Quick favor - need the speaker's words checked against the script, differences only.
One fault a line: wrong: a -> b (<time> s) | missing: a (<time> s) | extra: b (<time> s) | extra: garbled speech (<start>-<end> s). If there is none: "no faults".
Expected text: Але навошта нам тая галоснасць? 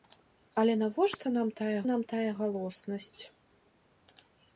extra: нам тая (1.9 s)